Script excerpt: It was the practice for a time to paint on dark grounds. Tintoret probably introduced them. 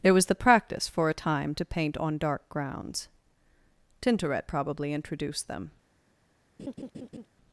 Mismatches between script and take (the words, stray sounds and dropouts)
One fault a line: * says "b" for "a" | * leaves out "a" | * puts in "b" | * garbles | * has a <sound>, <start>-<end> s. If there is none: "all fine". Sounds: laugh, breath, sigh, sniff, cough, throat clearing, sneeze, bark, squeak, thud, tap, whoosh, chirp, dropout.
* has a laugh, 6.6-7.3 s